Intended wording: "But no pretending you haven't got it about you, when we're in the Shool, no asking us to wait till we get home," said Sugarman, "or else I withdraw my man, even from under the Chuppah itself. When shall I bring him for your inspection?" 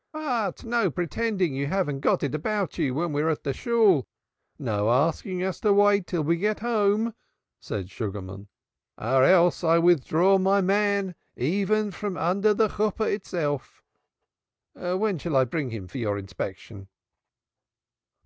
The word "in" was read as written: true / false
false